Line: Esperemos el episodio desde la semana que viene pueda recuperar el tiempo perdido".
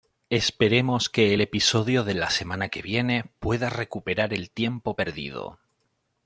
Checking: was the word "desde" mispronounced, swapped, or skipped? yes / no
yes